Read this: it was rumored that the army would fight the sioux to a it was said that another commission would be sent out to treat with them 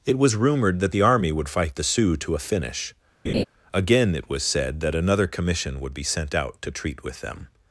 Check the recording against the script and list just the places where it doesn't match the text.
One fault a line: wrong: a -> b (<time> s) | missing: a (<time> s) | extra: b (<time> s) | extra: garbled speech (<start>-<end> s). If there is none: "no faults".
extra: finish again (2.4 s)